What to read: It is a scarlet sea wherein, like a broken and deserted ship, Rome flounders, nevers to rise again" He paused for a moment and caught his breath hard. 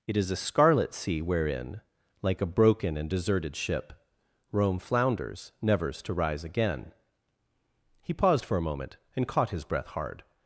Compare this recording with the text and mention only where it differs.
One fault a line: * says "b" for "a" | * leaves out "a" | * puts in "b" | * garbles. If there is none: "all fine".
all fine